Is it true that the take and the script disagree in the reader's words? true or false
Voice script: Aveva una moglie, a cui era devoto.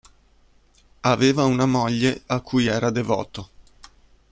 false